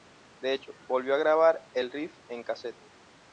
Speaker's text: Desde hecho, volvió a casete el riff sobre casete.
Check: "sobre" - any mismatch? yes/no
yes